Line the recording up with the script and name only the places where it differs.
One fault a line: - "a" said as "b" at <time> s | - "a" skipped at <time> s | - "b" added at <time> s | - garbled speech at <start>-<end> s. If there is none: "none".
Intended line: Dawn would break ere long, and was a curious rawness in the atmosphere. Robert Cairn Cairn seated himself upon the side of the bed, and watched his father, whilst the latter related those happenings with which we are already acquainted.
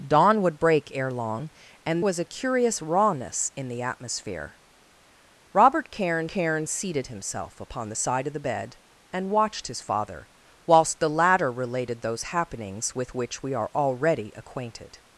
none